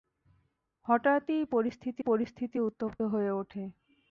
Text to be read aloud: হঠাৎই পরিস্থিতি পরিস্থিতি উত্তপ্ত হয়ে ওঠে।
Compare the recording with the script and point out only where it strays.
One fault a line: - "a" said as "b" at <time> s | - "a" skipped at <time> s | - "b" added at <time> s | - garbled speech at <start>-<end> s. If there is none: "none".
none